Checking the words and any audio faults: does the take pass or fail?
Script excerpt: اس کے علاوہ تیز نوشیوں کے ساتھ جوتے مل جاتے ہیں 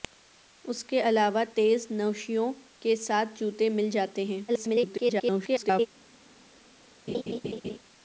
fail